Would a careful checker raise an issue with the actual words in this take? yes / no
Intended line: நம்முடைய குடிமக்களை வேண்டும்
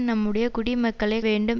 no